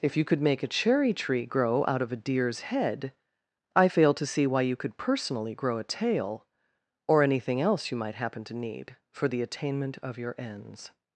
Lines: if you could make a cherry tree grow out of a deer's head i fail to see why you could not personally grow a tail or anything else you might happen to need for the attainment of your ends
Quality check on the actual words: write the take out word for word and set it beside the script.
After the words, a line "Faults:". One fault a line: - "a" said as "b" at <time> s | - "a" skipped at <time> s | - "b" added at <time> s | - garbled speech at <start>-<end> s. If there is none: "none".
if you could make a cherry tree grow out of a deer's head i fail to see why you could personally grow a tail or anything else you might happen to need for the attainment of your ends
Faults:
- "not" skipped at 5.0 s